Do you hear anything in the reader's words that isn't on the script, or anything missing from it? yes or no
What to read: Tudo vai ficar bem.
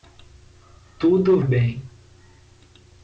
yes